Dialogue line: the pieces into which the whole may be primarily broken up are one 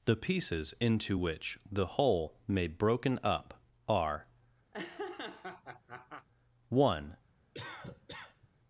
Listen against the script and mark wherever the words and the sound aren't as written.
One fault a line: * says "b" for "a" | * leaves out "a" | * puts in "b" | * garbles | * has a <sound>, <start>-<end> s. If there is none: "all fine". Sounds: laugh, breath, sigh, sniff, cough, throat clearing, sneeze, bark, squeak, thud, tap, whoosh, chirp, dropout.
* leaves out "be primarily"
* has a laugh, 4.7-6.3 s
* has a cough, 7.5-8.5 s